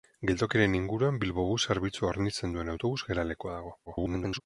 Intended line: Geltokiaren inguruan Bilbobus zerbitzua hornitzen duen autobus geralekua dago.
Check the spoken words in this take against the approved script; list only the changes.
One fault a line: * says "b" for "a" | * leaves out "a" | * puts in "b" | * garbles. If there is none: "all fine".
* garbles